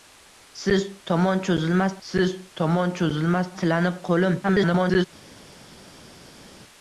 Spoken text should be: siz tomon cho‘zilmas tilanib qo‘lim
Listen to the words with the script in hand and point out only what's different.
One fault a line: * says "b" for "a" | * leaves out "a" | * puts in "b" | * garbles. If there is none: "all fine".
* puts in "siz tomon cho‘zilmas"
* garbles